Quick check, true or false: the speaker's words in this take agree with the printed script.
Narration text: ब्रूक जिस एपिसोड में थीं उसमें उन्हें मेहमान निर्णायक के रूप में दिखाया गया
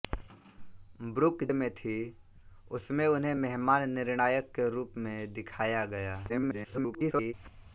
false